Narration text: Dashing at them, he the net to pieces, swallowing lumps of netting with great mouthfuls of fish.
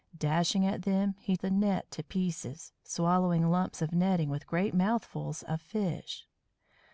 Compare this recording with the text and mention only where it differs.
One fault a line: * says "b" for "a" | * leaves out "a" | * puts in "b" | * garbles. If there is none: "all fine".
all fine